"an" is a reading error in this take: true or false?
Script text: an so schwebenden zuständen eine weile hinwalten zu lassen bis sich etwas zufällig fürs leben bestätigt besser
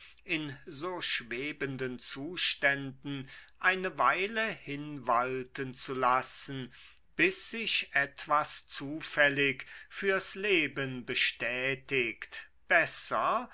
true